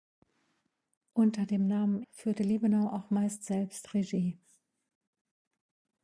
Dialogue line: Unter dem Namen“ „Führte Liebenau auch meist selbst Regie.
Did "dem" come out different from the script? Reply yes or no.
no